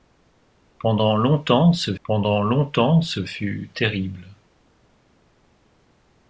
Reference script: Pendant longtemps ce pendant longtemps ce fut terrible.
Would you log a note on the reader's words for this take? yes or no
no